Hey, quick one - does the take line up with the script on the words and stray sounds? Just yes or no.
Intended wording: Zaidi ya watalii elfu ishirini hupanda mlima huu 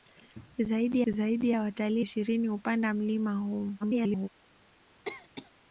no